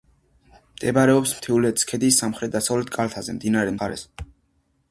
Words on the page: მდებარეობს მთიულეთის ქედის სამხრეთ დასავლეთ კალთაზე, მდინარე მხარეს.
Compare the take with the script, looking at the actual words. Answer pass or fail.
pass